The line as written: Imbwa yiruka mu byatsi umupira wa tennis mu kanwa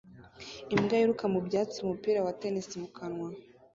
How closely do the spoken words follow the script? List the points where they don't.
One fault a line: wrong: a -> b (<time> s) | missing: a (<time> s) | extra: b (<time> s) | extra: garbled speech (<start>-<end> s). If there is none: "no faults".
no faults